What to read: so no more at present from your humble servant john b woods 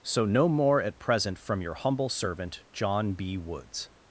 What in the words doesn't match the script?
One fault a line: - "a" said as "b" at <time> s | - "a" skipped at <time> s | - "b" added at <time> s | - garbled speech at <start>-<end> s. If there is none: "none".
none